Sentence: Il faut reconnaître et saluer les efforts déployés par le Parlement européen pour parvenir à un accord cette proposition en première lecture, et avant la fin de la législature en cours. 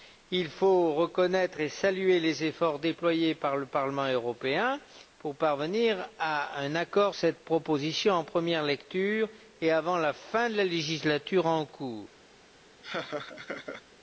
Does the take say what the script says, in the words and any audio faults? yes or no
no